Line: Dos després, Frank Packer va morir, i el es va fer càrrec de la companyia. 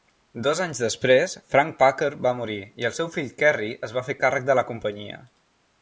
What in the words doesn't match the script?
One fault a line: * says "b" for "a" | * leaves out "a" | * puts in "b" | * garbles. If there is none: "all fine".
* puts in "anys"
* puts in "seu fill Kerry"